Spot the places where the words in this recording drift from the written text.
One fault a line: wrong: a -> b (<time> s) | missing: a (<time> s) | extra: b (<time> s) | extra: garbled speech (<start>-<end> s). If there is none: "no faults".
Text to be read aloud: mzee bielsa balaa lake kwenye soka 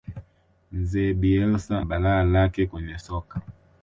no faults